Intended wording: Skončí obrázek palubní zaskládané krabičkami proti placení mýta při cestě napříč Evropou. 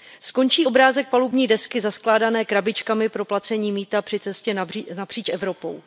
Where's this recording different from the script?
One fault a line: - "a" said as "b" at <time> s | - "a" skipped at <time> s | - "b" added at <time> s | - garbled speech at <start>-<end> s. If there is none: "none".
- "desky" added at 1.5 s
- "proti" said as "pro" at 3.1 s